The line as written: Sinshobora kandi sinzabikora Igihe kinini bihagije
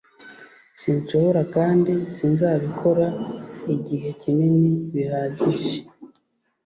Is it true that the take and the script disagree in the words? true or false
false